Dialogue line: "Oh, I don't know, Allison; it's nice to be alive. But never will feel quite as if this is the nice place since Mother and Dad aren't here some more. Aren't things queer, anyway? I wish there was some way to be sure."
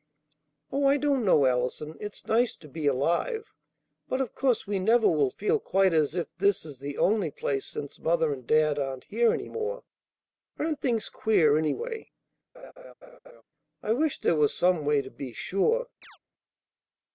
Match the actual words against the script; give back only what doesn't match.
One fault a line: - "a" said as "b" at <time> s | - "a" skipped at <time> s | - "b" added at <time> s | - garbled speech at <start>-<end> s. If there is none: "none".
- "of course we" added at 4.2 s
- "nice" said as "only" at 7.0 s
- "some" said as "any" at 9.3 s